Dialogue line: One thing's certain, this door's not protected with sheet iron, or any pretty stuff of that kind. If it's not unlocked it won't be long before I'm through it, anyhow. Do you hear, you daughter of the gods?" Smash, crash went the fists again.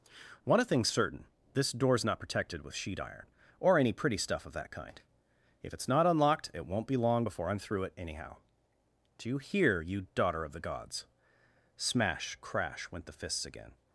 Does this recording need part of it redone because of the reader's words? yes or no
no